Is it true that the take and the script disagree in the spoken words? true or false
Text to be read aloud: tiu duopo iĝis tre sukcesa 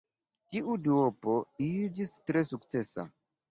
false